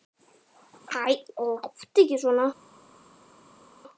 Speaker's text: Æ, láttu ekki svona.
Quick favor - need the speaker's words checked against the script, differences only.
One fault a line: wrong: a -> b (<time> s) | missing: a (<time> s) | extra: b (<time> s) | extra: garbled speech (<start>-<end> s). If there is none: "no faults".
no faults